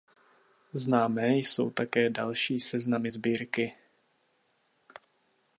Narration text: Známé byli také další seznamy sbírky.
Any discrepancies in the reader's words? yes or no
yes